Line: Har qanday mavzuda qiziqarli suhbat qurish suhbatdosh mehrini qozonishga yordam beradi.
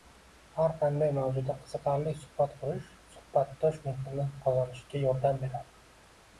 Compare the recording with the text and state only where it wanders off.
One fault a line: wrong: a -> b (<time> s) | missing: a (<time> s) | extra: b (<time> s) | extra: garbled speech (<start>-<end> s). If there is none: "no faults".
no faults